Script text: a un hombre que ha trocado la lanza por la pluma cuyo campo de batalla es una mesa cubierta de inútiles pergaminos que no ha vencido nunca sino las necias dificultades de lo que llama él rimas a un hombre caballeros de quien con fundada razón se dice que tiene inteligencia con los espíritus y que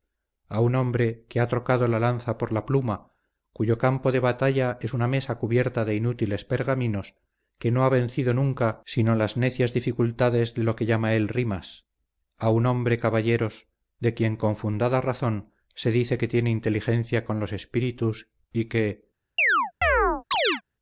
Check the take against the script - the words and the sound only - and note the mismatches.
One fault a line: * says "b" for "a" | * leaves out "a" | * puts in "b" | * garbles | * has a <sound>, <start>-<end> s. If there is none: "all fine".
* has a chirp, 19.4-20.6 s